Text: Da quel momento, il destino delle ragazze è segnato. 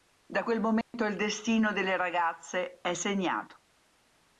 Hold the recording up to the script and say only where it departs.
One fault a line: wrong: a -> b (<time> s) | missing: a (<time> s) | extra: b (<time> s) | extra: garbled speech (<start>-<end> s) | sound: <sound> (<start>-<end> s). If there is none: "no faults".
sound: dropout (0.8-0.9 s)